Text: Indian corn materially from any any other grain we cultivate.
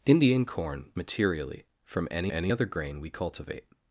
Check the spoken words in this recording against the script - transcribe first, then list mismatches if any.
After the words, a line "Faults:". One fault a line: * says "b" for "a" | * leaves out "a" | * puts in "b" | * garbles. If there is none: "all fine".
Indian corn materially from any any other grain we cultivate.
Faults:
all fine